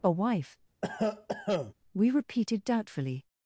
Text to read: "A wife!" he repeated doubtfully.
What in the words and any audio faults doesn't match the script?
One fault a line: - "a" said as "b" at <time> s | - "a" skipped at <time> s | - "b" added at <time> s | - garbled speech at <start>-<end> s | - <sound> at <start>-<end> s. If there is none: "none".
- cough at 0.8-1.7 s
- "he" said as "we" at 1.9 s